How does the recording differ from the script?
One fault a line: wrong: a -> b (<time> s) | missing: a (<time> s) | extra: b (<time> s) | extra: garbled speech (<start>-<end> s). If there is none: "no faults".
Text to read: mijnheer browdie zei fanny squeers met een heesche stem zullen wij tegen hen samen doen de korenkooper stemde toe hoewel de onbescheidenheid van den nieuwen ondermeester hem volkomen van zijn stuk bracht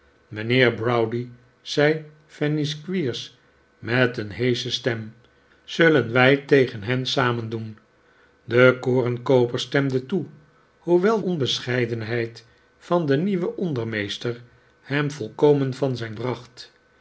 missing: de (11.2 s)
missing: stuk (16.2 s)